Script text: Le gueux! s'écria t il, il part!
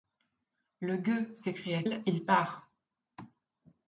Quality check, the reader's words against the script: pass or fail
fail